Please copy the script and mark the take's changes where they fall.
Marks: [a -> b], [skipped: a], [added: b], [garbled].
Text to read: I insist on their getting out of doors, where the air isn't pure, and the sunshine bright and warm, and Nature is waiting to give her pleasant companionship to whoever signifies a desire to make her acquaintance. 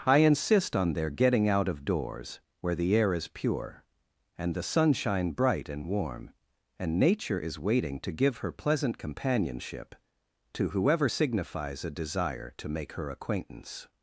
I insist on their getting out of doors, where the air [isn't -> is] pure, and the sunshine bright and warm, and Nature is waiting to give her pleasant companionship to whoever signifies a desire to make her acquaintance.